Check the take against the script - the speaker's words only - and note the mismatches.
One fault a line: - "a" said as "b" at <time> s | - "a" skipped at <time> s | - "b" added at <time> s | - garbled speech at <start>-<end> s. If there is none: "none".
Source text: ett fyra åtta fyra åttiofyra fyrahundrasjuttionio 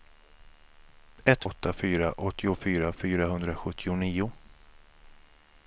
- "fyra" skipped at 1.4 s